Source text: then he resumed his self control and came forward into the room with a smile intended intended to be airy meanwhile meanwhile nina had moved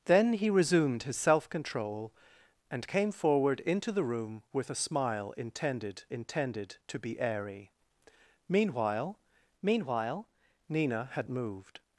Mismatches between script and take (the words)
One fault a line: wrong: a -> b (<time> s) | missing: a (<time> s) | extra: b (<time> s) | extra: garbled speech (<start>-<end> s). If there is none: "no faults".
no faults